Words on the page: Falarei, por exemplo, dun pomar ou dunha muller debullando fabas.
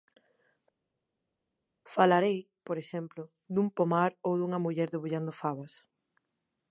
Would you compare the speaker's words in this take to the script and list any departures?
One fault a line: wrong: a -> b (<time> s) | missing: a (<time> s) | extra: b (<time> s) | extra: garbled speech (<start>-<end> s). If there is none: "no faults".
no faults